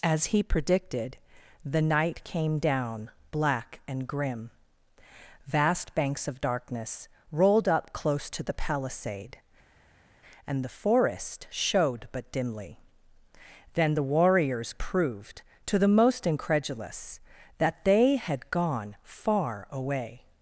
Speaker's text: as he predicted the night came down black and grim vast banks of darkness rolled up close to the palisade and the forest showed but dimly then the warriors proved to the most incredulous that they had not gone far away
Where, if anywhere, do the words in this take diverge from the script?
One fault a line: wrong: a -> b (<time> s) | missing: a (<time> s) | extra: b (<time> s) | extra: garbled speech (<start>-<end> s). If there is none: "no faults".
missing: not (18.5 s)